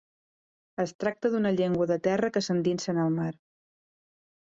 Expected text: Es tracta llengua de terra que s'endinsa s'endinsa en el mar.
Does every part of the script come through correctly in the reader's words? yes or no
no